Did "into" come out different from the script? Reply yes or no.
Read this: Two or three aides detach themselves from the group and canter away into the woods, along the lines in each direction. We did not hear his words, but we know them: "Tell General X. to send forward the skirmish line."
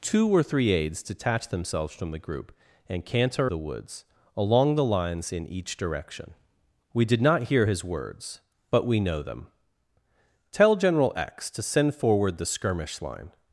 yes